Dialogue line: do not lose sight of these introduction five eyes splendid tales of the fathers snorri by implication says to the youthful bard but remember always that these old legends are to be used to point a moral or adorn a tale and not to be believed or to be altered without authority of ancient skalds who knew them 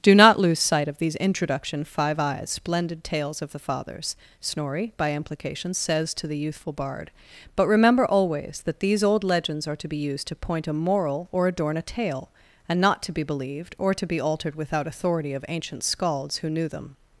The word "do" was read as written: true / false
true